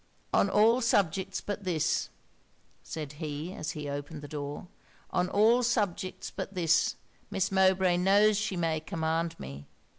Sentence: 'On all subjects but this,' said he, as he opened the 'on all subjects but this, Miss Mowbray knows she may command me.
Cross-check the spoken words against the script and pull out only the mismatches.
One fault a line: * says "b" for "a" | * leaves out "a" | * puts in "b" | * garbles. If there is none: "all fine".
* puts in "door"